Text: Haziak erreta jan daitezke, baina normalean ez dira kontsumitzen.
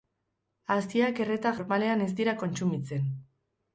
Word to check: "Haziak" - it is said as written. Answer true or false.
true